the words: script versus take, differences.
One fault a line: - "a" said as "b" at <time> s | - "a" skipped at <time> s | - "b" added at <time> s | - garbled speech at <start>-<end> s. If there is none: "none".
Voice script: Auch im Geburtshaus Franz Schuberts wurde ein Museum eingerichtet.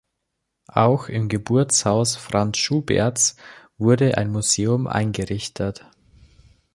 none